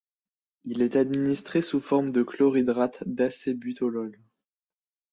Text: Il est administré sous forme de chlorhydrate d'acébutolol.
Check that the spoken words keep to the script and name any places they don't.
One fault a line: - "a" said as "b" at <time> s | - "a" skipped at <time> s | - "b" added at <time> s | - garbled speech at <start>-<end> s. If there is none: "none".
none